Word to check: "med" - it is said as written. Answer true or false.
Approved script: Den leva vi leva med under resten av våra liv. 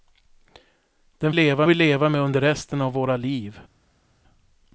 true